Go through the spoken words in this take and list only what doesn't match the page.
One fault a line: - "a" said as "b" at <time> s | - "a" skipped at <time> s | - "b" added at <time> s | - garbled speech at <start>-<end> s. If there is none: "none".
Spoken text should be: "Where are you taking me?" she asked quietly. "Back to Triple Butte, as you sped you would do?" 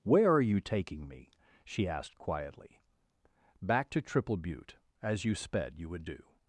none